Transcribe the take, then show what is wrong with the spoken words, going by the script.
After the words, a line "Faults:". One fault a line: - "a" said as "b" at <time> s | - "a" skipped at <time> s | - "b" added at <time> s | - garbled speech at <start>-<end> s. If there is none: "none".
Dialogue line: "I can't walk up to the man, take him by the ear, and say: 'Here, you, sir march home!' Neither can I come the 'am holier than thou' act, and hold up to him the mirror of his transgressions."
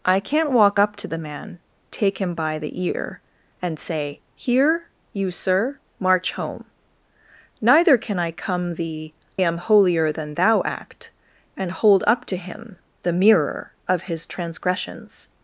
"I can't walk up to the man, take him by the ear, and say: 'Here, you, sir march home!' Neither can I come the 'am holier than thou' act, and hold up to him the mirror of his transgressions."
Faults:
none